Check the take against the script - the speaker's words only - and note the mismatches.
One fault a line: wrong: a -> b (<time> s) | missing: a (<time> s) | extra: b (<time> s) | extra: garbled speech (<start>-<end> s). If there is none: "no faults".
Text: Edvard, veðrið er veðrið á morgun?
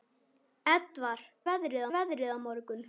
no faults